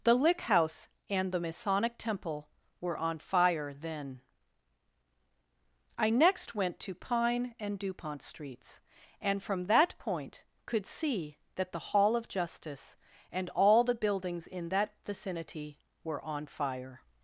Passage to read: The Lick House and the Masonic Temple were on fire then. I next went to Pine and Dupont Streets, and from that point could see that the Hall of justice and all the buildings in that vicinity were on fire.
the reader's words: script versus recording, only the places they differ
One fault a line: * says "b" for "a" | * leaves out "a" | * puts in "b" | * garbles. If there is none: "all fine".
all fine